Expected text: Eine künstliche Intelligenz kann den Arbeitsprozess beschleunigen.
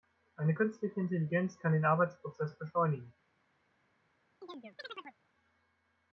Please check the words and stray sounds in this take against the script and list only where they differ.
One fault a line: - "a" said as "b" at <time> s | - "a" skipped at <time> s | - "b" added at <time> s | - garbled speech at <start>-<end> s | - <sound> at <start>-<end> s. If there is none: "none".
- chirp at 4.4-5.2 s